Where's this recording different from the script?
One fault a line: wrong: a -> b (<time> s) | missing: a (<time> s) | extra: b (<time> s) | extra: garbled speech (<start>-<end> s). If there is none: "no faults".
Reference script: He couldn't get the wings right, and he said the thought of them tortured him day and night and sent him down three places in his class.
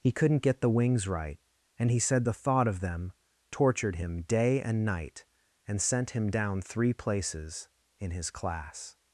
no faults